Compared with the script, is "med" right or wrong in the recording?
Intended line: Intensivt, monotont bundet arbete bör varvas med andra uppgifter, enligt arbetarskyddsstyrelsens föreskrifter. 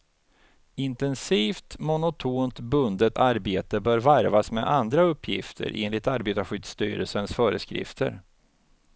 right